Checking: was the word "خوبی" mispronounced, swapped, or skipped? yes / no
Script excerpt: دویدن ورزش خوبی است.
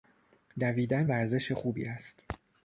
no